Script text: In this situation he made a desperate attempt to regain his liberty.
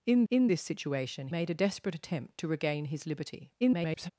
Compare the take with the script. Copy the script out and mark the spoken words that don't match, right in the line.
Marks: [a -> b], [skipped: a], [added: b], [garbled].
In [added: in] this situation [skipped: he] made a desperate attempt to regain his liberty. [garbled]